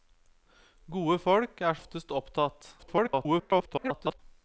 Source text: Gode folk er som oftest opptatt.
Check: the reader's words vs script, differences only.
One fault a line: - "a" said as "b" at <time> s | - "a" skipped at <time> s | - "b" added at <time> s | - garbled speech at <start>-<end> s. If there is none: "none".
- "som" skipped at 1.8 s
- garbled speech at 2.8-4.2 s